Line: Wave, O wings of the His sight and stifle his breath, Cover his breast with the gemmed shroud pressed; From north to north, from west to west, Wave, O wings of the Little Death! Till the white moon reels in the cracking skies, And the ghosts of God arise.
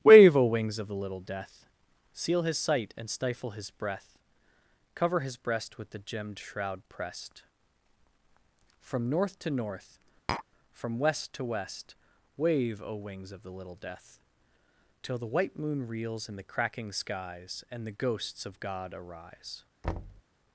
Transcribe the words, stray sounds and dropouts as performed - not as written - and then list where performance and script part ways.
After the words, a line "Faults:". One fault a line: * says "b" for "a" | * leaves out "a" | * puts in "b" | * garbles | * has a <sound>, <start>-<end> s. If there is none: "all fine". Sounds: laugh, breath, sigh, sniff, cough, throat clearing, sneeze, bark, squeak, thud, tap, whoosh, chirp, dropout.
Wave, O wings of the Little Death! Seal his sight and stifle his breath, Cover his breast with the gemmed shroud pressed; From north to north, from west to west, Wave, O wings of the Little Death! Till the white moon reels in the cracking skies, And the ghosts of God arise.
Faults:
* puts in "Little Death Seal"
* has a tap, 10.3-10.4 s
* has a thud, 19.8-20.2 s